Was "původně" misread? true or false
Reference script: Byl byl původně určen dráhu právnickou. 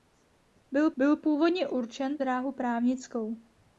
false